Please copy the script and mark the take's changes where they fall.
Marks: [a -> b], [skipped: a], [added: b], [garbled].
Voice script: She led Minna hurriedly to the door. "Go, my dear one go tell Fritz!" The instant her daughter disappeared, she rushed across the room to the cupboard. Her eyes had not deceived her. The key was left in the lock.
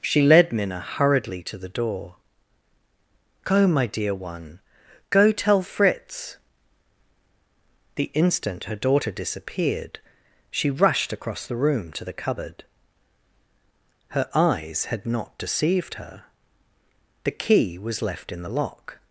She led Minna hurriedly to the door. "Go, my dear one go tell Fritz!" The instant her daughter disappeared, she rushed across the room to the cupboard. Her eyes had not deceived her. The key was left in the lock.